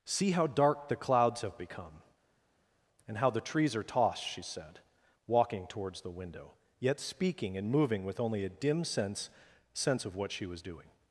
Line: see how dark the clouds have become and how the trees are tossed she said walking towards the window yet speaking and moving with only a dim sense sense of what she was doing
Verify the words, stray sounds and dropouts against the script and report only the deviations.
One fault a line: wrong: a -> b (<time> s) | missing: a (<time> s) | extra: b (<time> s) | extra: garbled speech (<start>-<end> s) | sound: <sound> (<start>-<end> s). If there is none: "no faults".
no faults